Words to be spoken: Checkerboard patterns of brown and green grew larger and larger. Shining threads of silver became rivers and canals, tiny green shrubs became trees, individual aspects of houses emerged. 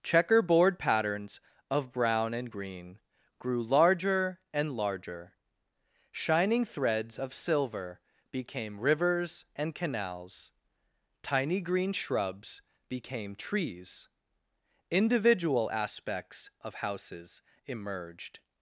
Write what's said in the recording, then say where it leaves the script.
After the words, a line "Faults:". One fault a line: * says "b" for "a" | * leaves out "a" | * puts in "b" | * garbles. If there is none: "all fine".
Checkerboard patterns of brown and green grew larger and larger. Shining threads of silver became rivers and canals, tiny green shrubs became trees, individual aspects of houses emerged.
Faults:
all fine